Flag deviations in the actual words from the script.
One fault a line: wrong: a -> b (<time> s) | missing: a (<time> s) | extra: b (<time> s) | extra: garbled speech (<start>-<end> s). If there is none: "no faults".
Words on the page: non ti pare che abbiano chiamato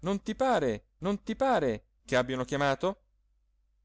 extra: non ti pare (1.0 s)